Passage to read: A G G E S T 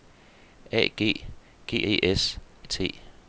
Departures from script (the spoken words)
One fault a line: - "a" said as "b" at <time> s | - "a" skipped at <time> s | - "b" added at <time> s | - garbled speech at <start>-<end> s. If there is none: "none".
none